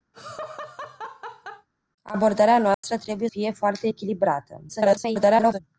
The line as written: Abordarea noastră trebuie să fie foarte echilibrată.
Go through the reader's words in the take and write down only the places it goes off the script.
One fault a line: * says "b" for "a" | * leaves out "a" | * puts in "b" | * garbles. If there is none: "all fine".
* leaves out "să"
* garbles